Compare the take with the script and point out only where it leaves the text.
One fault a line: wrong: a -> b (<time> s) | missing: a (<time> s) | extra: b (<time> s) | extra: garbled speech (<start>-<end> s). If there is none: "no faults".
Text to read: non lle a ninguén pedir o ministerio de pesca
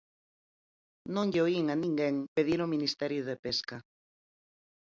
extra: oín (1.5 s)